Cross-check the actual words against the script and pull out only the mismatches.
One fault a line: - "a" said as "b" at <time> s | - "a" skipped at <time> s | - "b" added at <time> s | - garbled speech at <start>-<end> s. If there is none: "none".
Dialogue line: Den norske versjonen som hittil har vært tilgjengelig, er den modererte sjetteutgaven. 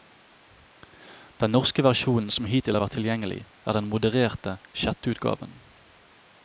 none